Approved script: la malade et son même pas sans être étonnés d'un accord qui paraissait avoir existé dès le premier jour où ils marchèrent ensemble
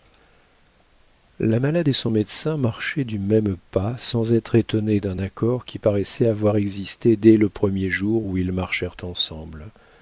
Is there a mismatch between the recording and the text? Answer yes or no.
yes